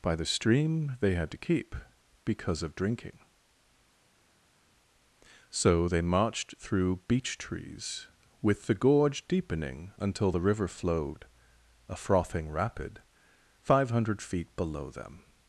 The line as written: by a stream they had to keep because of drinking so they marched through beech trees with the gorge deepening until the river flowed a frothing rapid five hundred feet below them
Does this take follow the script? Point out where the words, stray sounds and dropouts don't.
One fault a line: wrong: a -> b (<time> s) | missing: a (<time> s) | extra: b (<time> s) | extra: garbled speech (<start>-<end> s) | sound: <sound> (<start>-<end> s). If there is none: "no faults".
wrong: a -> the (0.1 s)